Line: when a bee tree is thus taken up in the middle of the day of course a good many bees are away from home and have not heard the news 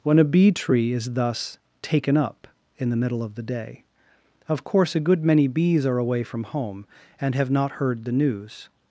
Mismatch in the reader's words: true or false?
false